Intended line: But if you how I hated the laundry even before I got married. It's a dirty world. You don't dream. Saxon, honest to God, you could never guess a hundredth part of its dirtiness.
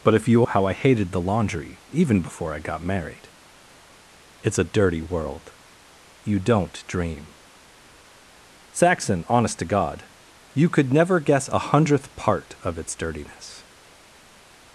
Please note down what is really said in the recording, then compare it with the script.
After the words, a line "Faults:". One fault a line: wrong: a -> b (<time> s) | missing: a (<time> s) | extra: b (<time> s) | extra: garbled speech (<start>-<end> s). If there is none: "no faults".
But if you how I hated the laundry even before I got married. It's a dirty world. You don't dream. Saxon, honest to God, you could never guess a hundredth part of its dirtiness.
Faults:
no faults